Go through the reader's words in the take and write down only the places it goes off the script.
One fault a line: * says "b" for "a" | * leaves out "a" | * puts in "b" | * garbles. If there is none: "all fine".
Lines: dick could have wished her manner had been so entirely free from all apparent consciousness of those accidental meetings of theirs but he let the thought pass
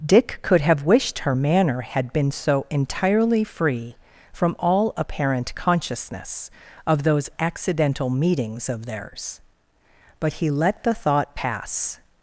all fine